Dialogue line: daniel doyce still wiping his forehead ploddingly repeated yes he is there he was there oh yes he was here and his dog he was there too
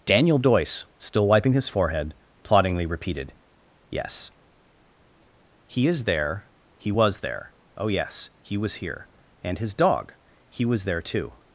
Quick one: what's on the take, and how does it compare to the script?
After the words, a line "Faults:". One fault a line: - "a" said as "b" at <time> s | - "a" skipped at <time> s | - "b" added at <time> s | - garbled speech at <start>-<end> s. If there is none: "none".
daniel doyce still wiping his forehead ploddingly repeated yes he is there he was there oh yes he was here and his dog he was there too
Faults:
none